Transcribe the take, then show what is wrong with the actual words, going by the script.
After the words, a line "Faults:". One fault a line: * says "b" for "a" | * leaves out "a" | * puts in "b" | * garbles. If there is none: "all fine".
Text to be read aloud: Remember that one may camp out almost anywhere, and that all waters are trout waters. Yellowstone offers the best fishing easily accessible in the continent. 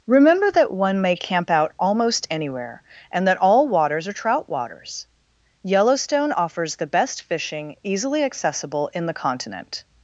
Remember that one may camp out almost anywhere, and that all waters are trout waters. Yellowstone offers the best fishing easily accessible in the continent.
Faults:
all fine